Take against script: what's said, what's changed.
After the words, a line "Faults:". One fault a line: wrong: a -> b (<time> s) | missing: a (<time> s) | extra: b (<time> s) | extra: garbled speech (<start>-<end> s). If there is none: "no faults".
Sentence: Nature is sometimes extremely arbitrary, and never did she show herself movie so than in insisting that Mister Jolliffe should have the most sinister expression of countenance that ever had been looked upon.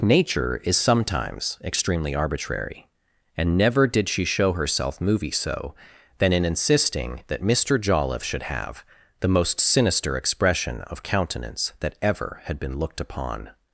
Nature is sometimes extremely arbitrary, and never did she show herself movie so than in insisting that Mister Jolliffe should have the most sinister expression of countenance that ever had been looked upon.
Faults:
no faults